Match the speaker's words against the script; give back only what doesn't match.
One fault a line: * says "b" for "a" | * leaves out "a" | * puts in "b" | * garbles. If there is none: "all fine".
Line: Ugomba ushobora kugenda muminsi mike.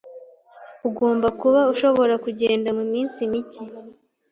* puts in "kuba"